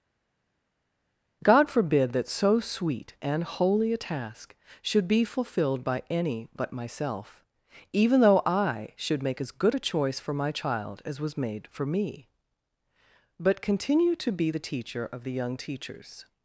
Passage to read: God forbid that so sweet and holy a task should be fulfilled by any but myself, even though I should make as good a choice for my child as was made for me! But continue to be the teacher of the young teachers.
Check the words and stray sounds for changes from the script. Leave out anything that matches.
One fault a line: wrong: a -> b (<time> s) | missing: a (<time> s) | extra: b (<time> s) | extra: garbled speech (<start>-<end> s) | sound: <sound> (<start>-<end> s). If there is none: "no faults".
no faults